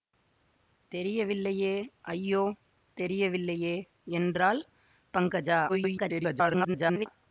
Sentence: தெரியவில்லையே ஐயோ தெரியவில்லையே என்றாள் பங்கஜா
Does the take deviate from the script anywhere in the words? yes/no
yes